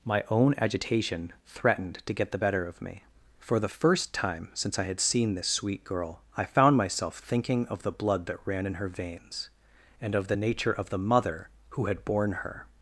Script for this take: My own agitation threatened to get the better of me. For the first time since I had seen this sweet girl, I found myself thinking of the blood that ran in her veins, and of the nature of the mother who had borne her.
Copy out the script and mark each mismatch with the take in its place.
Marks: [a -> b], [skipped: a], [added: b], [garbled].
My own agitation threatened to get the better of me. For the first time since I had seen this sweet girl, I found myself thinking of the blood that ran in her veins, and of the nature of the mother who had borne her.